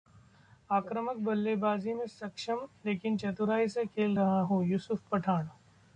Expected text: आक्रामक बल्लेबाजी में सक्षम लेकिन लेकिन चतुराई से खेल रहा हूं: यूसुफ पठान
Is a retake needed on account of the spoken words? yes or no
yes